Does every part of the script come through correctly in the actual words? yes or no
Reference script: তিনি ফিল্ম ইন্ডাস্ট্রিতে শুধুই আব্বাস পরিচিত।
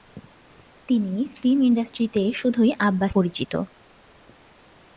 yes